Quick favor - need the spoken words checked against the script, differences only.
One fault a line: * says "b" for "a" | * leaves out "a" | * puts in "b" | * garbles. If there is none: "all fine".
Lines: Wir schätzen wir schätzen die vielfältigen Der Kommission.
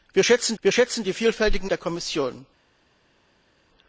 all fine